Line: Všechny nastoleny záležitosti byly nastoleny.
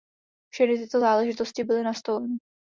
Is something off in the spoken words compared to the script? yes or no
yes